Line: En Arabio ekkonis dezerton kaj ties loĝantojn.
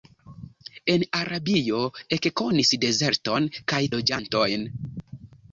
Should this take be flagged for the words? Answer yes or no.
yes